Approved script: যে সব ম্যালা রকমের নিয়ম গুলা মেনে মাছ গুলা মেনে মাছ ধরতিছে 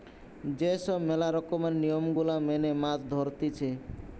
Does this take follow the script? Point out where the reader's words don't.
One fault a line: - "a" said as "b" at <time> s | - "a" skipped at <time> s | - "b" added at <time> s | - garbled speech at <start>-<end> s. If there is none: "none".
- "গুলা মেনে মাছ" skipped at 3.0 s